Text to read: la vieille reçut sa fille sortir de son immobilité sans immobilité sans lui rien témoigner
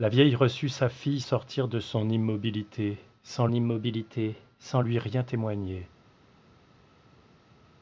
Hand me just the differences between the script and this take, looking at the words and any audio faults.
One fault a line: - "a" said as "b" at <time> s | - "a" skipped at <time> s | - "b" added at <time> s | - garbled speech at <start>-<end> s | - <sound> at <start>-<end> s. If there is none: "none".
none